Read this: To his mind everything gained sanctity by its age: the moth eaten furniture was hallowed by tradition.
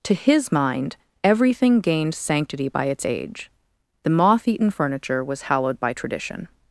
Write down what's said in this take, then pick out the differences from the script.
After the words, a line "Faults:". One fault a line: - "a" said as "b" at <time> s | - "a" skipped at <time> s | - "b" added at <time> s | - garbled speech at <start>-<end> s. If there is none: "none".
To his mind everything gained sanctity by its age: the moth eaten furniture was hallowed by tradition.
Faults:
none